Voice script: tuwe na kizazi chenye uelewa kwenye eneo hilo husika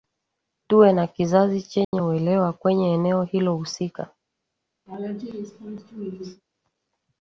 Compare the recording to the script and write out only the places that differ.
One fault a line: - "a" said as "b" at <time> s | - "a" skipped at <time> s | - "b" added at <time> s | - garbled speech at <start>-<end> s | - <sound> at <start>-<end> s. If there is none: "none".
- dropout at 1.8-1.9 s
- laugh at 4.9-6.4 s